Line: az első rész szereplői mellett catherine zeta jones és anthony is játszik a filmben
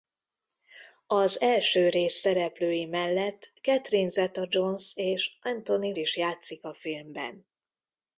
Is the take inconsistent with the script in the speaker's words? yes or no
no